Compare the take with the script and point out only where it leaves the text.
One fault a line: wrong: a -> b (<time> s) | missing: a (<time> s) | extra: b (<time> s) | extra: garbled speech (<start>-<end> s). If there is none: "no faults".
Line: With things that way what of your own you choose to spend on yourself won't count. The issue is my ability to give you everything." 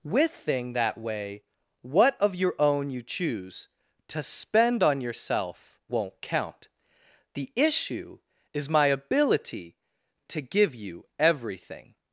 wrong: things -> thing (0.3 s)